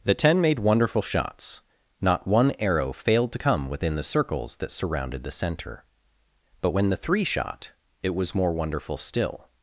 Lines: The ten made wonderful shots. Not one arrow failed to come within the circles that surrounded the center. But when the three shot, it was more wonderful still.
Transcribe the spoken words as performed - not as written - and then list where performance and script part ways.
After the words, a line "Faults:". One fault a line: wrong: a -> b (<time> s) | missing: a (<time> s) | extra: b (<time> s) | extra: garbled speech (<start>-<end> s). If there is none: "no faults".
The ten made wonderful shots. Not one arrow failed to come within the circles that surrounded the center. But when the three shot, it was more wonderful still.
Faults:
no faults